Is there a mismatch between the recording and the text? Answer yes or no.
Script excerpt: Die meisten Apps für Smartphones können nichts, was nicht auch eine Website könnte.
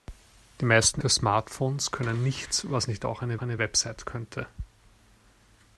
yes